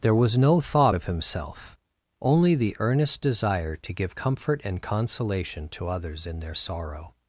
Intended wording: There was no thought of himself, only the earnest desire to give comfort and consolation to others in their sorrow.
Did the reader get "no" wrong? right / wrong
right